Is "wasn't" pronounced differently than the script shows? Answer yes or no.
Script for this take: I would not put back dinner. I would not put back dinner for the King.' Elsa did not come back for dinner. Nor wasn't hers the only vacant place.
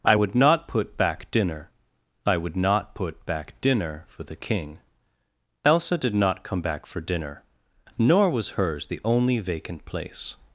yes